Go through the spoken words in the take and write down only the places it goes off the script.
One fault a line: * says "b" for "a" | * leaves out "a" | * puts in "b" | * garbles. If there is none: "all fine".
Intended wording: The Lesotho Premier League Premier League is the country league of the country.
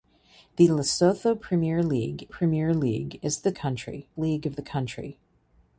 all fine